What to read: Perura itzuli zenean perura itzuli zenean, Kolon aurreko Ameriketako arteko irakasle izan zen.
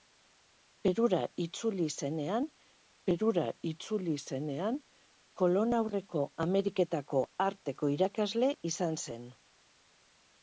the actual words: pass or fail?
pass